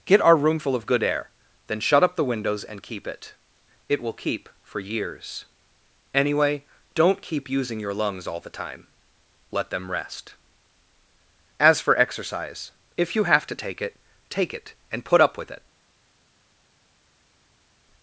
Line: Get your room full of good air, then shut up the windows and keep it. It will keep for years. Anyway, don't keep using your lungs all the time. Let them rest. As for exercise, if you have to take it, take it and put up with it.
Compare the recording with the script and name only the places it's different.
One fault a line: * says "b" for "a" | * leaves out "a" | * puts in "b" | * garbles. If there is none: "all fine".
* says "our" for "your"